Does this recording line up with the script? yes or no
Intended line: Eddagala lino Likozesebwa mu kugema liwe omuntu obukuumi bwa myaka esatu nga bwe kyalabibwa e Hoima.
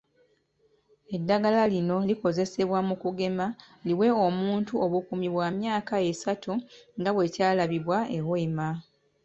yes